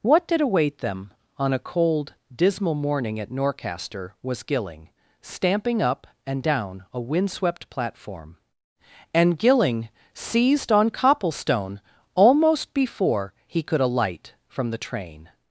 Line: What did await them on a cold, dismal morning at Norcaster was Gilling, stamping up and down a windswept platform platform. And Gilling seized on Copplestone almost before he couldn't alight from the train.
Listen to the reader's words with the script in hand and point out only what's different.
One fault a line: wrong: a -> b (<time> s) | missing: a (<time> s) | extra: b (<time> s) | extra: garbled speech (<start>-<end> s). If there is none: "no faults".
missing: platform (8.4 s)
wrong: couldn't -> could (13.6 s)